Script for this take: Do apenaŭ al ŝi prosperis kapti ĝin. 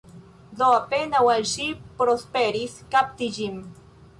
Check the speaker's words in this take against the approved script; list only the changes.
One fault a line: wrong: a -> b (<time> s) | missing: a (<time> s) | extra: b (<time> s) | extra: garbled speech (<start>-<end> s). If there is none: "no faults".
no faults